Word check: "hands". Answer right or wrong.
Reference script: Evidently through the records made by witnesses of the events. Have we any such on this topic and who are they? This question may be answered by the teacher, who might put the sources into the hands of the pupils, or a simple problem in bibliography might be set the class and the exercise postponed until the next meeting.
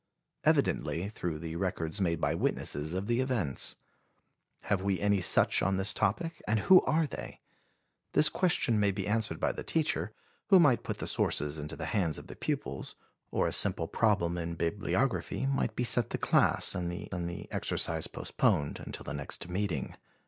right